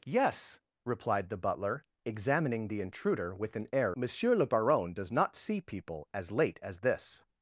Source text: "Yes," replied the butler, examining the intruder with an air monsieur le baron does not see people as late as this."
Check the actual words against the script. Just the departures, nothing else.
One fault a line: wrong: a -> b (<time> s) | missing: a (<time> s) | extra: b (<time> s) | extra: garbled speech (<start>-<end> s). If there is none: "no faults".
no faults